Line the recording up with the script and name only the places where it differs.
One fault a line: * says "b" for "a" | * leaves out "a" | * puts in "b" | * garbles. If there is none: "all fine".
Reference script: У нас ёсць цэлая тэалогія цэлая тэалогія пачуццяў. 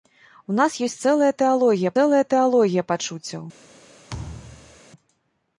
all fine